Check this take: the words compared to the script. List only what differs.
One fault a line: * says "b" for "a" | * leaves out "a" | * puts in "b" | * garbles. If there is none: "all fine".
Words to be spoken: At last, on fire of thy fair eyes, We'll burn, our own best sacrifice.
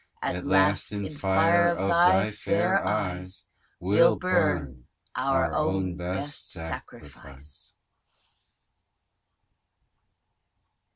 * says "in" for "on"